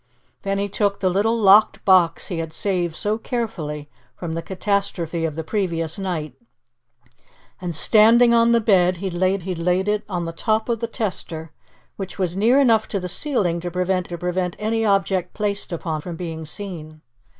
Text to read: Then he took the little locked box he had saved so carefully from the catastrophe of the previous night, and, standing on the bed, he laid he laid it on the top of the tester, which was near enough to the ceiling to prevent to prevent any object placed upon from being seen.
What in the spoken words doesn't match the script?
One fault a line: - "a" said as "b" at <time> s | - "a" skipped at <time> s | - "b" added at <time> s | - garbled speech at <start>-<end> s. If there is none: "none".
none